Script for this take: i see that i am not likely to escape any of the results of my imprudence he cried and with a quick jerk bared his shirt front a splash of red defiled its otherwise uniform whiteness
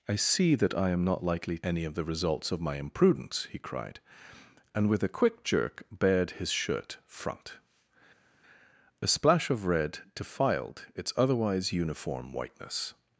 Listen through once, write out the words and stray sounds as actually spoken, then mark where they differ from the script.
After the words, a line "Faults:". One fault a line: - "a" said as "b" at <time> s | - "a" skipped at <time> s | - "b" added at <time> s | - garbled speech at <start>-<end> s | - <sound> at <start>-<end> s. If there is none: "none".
i see that i am not likely any of the results of my imprudence he cried and with a quick jerk bared his shirt front a splash of red defiled its otherwise uniform whiteness
Faults:
- "to escape" skipped at 1.6 s